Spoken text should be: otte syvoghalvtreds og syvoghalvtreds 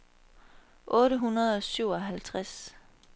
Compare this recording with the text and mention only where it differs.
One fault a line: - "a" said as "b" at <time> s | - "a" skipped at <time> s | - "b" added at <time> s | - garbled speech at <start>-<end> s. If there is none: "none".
- "syvoghalvtreds" said as "hundrede" at 1.1 s